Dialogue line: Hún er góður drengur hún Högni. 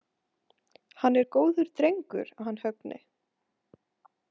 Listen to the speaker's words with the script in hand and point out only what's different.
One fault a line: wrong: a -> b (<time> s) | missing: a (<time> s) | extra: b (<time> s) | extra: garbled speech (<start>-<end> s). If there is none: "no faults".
wrong: Hún -> Hann (1.0 s)
wrong: hún -> hann (2.5 s)